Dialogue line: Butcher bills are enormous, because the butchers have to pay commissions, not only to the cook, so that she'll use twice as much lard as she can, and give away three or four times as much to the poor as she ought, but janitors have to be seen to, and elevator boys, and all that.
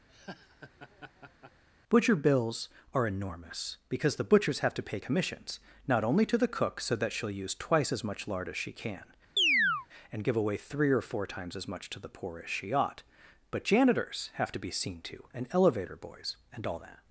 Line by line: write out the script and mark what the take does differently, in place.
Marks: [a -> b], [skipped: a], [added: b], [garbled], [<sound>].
[laugh] Butcher bills are enormous, because the butchers have to pay commissions, not only to the cook, so that she'll use twice as much lard as she can, [chirp] and give away three or four times as much to the poor as she ought, but janitors have to be seen to, and elevator boys, and all that.